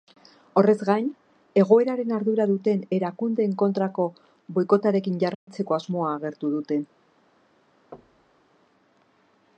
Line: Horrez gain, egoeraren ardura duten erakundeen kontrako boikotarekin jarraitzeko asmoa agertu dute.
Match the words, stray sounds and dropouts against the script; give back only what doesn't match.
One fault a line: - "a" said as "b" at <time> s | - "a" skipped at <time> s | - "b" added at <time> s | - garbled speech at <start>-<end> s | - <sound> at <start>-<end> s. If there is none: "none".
- dropout at 5.3-5.5 s
- thud at 7.9-8.5 s